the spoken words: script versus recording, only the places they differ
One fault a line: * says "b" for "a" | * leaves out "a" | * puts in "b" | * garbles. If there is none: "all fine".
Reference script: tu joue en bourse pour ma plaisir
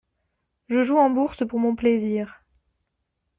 * says "je" for "tu"
* says "mon" for "ma"